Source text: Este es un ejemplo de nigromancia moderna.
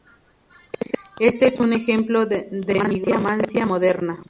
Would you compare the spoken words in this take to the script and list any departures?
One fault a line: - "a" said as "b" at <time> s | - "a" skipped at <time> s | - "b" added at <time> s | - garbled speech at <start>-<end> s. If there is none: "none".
none